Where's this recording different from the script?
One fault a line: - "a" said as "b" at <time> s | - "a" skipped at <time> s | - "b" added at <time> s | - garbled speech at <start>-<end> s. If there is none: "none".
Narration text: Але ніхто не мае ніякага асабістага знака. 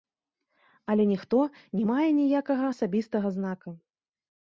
none